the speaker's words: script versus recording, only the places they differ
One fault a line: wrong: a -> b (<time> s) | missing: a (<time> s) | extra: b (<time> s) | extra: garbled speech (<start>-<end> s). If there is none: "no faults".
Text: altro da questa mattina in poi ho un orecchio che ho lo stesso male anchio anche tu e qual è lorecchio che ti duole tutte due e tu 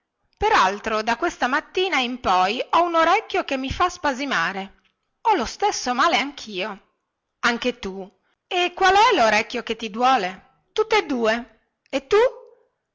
extra: mi fa spasimare (3.6 s)